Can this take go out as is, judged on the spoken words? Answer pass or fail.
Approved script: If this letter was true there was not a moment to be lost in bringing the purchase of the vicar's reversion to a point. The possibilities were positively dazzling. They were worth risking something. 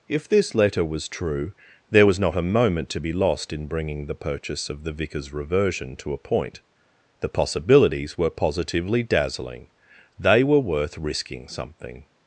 pass